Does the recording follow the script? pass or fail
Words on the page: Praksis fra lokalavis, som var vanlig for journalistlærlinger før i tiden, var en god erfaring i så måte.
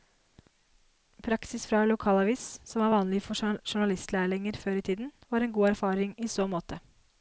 pass